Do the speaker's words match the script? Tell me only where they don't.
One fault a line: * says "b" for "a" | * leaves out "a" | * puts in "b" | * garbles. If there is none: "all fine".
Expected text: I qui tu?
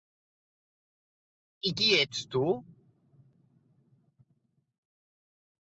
* puts in "ets"